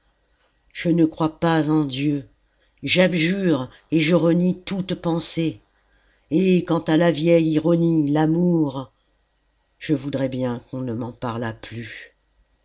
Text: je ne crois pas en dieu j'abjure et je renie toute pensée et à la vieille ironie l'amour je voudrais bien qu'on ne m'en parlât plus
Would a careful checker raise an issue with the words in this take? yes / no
yes